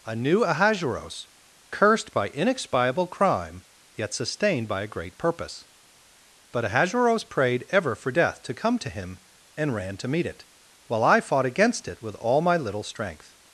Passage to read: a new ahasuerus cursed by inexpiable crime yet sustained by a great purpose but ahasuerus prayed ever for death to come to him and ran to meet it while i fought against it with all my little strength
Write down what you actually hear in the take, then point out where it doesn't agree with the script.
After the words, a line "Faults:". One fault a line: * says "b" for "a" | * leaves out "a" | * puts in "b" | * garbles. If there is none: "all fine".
a new ahasuerus cursed by inexpiable crime yet sustained by a great purpose but ahasuerus prayed ever for death to come to him and ran to meet it while i fought against it with all my little strength
Faults:
all fine